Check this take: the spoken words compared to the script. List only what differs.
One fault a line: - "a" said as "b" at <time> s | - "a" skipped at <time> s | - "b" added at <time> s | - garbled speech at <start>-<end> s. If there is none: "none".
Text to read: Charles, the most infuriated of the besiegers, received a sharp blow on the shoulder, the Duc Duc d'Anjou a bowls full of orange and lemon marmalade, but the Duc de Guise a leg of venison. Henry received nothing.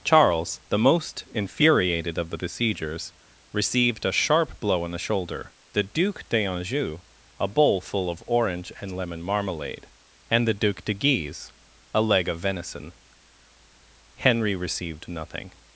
- "Duc" skipped at 6.3 s
- "bowls" said as "bowl" at 7.5 s
- "but" said as "and" at 10.3 s